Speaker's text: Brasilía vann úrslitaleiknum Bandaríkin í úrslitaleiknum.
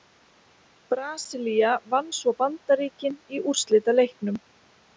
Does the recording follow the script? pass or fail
fail